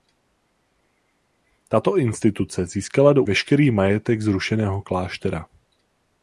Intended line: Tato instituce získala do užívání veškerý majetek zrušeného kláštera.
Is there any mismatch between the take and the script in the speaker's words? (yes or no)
yes